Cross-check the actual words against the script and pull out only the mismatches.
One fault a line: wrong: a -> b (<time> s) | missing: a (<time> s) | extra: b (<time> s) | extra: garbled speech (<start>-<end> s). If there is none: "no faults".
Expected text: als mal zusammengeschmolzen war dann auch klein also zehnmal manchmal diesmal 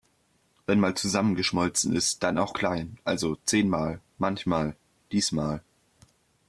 wrong: als -> wenn (0.7 s)
wrong: war -> ist (1.9 s)